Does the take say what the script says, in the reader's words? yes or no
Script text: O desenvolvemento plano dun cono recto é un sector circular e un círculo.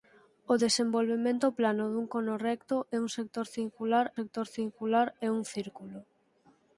no